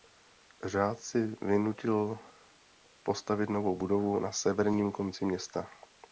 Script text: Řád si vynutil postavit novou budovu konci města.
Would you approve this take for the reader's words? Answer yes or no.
no